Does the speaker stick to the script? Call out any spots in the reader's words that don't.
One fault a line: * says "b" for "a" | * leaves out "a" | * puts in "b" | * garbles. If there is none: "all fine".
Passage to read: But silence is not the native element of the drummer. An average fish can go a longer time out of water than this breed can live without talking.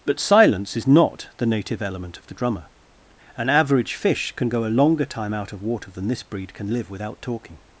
all fine